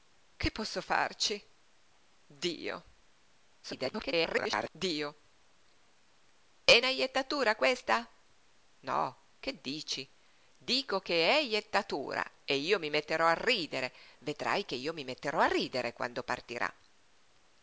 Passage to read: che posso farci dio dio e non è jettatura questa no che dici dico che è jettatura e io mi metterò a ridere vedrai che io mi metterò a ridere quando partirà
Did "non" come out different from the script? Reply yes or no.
yes